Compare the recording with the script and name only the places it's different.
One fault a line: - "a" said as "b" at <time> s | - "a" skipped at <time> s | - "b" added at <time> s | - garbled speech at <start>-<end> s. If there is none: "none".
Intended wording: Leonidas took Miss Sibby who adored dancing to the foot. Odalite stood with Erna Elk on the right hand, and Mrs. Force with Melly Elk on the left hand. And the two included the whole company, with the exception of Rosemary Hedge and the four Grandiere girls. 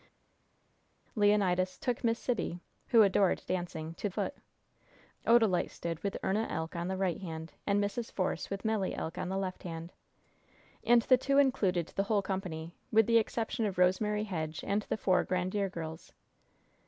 - "the" skipped at 4.1 s